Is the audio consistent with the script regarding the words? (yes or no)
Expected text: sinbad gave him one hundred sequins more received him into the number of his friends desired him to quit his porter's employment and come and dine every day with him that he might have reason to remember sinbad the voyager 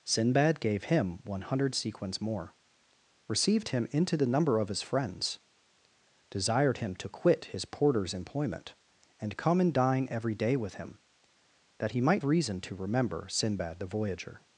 no